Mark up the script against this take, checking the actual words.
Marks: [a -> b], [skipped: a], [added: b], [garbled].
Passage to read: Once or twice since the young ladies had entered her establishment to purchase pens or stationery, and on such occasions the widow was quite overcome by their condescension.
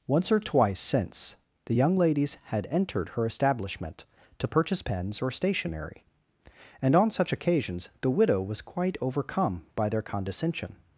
Once or twice since the young ladies had entered her establishment to purchase pens or stationery, and on such occasions the widow was quite overcome by their condescension.